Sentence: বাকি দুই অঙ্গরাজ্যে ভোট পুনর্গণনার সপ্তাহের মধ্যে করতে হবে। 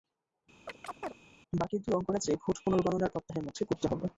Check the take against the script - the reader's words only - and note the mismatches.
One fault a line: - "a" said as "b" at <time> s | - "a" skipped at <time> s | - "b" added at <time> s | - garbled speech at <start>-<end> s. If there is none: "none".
none